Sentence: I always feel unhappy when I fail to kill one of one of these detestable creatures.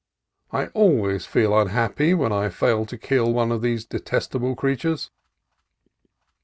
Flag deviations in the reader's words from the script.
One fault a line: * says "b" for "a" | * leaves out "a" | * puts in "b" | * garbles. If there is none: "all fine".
* leaves out "one of"